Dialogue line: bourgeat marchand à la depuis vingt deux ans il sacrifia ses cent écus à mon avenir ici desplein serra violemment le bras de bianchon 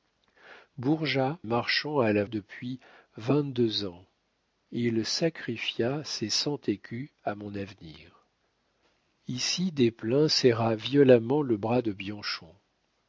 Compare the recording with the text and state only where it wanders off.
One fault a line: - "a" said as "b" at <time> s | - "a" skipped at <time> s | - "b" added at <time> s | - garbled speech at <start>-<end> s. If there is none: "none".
none